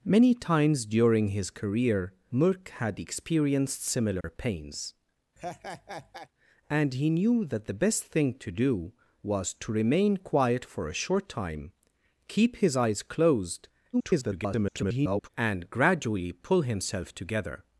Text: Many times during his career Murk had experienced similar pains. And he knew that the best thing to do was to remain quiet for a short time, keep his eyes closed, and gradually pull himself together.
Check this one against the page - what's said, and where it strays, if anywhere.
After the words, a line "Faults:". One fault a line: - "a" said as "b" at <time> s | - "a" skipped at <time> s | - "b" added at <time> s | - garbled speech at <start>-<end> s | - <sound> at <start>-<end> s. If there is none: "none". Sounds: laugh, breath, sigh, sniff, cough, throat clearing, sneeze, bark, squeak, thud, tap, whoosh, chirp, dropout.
Many times during his career Murk had experienced similar pains. And he knew that the best thing to do was to remain quiet for a short time, keep his eyes closed, [garbled] and gradually pull himself together.
Faults:
- dropout at 4.2-4.2 s
- laugh at 5.4-6.3 s
- garbled speech at 13.9-15.3 s